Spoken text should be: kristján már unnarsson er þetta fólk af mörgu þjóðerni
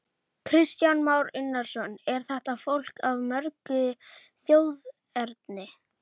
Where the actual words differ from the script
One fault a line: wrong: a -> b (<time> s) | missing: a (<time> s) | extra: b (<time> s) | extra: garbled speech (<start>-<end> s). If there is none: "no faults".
no faults